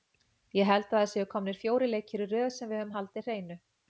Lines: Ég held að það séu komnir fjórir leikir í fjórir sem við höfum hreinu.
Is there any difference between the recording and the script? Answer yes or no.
yes